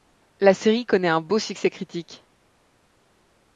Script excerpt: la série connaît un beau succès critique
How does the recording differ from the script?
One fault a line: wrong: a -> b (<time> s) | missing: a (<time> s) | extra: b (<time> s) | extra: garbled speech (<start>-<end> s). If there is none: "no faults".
no faults